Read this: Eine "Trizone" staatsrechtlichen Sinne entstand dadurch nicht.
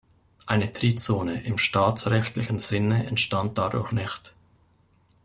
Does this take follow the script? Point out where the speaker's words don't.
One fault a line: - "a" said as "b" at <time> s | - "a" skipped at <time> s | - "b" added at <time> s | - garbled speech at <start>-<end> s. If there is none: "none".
- "im" added at 1.4 s